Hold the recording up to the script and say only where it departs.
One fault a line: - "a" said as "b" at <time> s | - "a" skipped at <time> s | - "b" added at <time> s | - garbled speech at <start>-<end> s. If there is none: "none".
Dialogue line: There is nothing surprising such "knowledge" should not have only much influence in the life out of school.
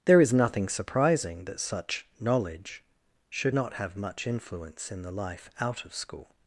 - "that" added at 1.4 s
- "only" skipped at 4.0 s